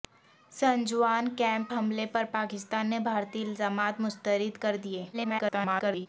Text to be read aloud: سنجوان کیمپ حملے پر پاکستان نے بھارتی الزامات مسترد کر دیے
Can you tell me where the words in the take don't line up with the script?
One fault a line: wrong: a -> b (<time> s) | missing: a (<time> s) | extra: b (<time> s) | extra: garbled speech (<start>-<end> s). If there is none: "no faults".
extra: garbled speech (5.1-6.1 s)